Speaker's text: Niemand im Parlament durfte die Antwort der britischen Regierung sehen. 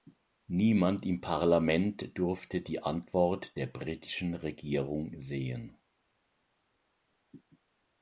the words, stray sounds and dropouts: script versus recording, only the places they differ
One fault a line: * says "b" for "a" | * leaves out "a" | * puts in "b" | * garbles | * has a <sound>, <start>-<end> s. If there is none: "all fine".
all fine